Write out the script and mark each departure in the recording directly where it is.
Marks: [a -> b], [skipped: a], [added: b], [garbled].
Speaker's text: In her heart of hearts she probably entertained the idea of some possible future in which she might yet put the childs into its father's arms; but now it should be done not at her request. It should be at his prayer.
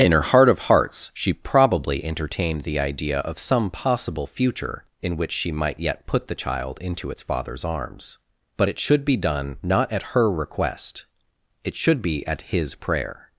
In her heart of hearts she probably entertained the idea of some possible future in which she might yet put the [childs -> child] into its father's arms; but [skipped: now] it should be done not at her request. It should be at his prayer.